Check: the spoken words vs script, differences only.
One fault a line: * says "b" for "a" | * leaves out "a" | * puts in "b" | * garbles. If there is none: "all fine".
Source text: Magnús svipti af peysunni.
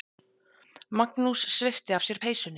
* puts in "sér"